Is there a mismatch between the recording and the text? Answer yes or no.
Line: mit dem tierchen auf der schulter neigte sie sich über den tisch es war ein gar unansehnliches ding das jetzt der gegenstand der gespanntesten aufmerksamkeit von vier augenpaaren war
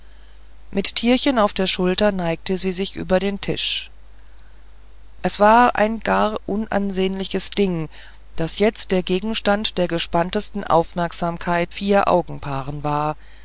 yes